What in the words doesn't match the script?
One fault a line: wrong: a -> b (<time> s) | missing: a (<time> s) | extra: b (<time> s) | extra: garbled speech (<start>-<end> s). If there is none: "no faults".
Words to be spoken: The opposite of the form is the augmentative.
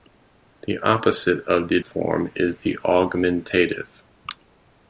no faults